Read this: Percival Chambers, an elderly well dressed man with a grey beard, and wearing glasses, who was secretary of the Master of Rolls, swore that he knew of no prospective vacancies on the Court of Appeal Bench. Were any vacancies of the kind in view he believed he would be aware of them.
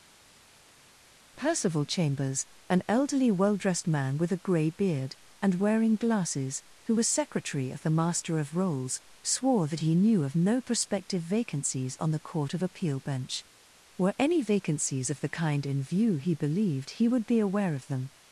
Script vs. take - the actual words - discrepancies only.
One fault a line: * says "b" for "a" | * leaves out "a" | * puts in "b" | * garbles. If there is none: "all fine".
all fine